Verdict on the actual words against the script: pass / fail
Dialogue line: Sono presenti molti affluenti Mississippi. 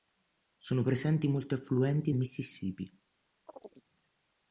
pass